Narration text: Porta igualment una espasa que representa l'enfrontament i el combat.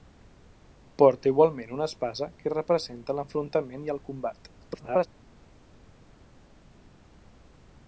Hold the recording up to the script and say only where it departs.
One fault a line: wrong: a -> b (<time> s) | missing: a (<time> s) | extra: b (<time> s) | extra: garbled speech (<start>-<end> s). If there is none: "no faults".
extra: garbled speech (4.6-5.1 s)